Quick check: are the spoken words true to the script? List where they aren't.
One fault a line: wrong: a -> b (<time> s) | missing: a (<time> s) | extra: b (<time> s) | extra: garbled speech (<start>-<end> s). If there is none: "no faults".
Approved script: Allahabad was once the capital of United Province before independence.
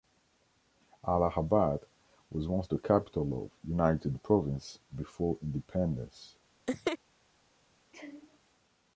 no faults